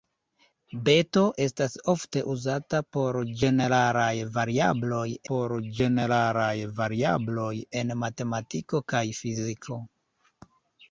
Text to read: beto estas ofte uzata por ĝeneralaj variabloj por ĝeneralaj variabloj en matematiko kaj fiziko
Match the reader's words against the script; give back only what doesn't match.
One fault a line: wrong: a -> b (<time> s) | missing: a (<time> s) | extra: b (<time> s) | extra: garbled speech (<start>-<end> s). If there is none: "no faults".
no faults